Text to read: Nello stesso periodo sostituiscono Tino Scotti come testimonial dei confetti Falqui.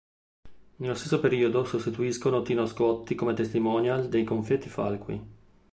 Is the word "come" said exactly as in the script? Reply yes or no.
yes